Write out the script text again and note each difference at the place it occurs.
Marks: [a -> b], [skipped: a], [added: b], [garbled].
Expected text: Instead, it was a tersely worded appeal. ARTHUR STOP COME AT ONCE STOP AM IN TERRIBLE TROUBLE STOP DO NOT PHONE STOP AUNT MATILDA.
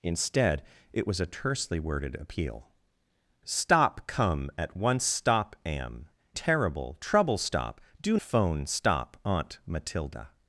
Instead, it was a tersely worded appeal. [skipped: ARTHUR] STOP COME AT ONCE STOP AM [skipped: IN] TERRIBLE TROUBLE STOP DO [skipped: NOT] PHONE STOP AUNT MATILDA.